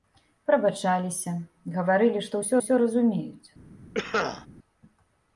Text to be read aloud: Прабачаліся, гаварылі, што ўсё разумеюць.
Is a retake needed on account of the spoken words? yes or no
yes